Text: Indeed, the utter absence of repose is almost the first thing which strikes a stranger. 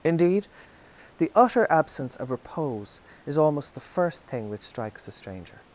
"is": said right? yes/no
yes